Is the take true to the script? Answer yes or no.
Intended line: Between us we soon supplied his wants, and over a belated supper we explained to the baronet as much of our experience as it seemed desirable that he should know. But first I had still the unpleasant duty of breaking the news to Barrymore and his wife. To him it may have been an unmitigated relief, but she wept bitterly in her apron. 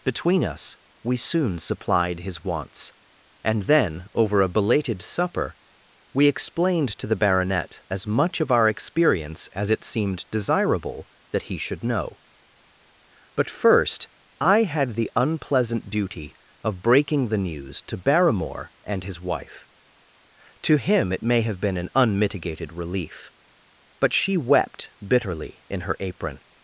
no